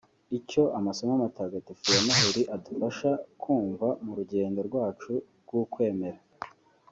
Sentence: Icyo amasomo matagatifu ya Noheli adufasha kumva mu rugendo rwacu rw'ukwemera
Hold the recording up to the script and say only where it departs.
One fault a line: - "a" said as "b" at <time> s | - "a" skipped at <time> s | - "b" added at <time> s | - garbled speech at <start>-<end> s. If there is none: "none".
none